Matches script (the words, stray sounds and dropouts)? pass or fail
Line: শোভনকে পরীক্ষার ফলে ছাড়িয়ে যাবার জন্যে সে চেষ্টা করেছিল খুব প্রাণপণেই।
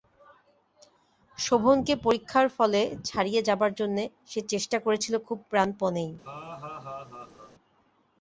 fail